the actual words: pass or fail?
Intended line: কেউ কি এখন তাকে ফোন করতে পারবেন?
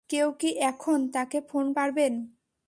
fail